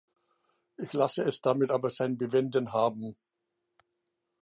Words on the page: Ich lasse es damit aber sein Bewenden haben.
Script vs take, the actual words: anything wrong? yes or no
no